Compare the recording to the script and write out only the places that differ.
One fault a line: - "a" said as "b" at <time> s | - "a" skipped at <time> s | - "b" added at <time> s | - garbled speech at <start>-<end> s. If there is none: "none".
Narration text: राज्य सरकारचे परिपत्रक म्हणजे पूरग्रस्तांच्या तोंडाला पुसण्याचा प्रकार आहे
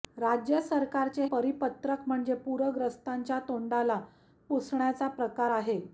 none